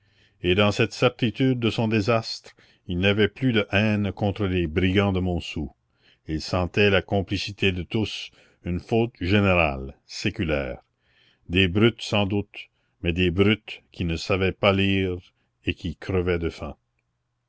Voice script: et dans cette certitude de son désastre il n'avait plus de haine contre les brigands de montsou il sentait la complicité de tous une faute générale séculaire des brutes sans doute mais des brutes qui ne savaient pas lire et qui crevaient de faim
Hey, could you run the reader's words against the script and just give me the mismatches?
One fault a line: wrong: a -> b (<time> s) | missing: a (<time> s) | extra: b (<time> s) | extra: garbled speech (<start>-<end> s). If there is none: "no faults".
no faults